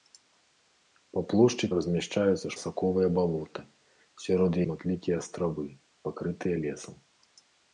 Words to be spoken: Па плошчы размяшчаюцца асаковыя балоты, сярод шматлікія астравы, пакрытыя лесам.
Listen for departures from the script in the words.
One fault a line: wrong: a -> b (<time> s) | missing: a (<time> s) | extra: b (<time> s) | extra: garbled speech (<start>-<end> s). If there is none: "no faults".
no faults